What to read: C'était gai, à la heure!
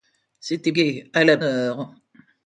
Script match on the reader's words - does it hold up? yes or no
yes